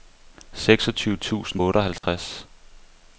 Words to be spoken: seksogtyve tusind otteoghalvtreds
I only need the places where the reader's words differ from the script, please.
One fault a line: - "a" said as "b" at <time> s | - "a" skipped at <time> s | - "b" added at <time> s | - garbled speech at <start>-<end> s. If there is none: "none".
none